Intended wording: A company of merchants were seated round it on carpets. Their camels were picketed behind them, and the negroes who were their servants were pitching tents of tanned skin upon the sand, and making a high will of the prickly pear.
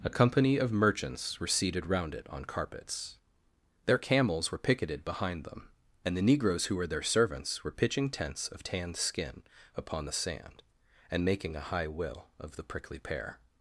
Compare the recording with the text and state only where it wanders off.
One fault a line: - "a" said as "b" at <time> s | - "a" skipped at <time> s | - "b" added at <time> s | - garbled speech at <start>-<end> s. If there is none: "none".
none